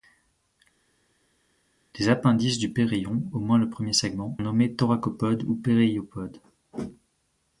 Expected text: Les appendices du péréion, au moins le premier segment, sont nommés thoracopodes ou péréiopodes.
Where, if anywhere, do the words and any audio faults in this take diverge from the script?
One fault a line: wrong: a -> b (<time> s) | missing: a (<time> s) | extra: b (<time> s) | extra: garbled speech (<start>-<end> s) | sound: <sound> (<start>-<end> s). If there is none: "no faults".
missing: sont (4.4 s)